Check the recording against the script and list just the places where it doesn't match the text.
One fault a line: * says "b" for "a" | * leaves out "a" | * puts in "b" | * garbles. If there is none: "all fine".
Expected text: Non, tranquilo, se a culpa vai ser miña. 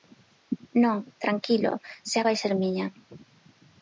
* leaves out "culpa"